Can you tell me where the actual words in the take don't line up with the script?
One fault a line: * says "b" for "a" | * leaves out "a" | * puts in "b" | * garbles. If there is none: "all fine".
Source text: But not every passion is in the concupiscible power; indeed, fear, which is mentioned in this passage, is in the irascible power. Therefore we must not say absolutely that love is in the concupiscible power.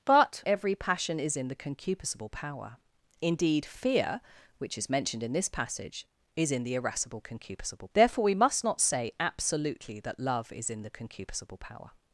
* leaves out "not"
* says "concupiscible" for "power"